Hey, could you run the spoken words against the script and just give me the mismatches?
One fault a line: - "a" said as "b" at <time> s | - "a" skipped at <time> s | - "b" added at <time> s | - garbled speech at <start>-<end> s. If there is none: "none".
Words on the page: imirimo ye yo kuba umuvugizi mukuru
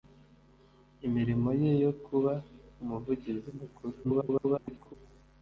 - garbled speech at 4.0-4.9 s